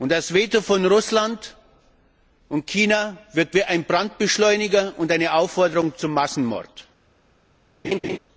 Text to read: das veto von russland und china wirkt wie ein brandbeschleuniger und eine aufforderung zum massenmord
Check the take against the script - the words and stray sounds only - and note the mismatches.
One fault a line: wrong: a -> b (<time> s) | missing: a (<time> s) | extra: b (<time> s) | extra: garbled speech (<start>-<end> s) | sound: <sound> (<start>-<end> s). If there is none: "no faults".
sound: laugh (7.8-8.2 s)